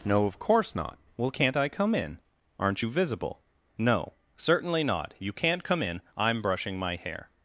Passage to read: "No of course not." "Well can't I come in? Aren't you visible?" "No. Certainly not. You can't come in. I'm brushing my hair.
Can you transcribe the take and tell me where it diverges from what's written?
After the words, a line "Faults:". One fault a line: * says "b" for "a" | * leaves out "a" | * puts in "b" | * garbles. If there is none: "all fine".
"No of course not." "Well can't I come in? Aren't you visible?" "No. Certainly not. You can't come in. I'm brushing my hair.
Faults:
all fine